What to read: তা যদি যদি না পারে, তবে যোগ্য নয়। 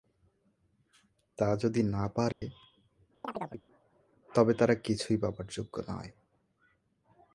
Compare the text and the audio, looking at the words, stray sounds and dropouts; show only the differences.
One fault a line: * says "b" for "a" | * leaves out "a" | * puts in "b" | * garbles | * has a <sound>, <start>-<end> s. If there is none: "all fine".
* leaves out "যদি"
* has a dropout, 2.3-2.4 s
* has a chirp, 3.2-3.6 s
* puts in "তারা কিছুই পাবার"